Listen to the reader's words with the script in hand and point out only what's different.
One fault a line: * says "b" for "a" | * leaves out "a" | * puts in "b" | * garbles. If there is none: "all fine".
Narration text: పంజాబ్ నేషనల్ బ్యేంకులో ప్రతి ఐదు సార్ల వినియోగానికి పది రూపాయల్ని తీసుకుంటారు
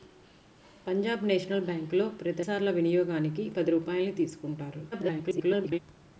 * leaves out "ఐదు"
* garbles